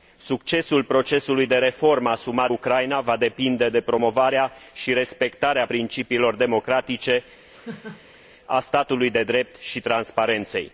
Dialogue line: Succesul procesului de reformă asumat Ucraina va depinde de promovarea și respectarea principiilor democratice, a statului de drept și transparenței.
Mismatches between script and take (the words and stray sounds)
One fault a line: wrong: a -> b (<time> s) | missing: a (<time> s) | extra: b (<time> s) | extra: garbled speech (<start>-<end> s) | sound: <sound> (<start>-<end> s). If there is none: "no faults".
sound: laugh (7.5-8.2 s)